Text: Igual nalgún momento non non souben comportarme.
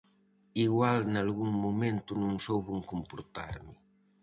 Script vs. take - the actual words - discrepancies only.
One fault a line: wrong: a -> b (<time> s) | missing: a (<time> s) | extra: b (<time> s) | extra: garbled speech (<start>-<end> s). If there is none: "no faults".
missing: non (2.3 s)